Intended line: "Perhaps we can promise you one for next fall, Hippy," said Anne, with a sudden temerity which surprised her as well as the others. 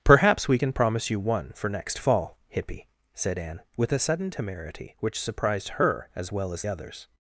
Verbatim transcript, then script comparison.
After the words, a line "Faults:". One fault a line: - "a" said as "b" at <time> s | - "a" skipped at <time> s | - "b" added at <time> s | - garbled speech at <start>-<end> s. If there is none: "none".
"Perhaps we can promise you one for next fall, Hippy," said Anne, with a sudden temerity which surprised her as well as others.
Faults:
- "the" skipped at 6.6 s